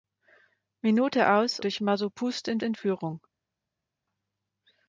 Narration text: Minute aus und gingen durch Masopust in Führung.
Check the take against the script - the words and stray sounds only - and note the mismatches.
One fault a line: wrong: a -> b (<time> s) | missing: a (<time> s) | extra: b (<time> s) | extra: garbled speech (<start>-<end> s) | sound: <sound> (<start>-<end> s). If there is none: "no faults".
missing: und gingen (1.6 s)
extra: in (2.6 s)